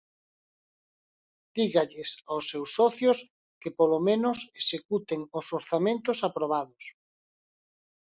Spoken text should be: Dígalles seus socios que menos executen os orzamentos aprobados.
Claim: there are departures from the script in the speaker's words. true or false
true